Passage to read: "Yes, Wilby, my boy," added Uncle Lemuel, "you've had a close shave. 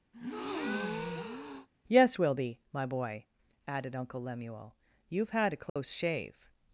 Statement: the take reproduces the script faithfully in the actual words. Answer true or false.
true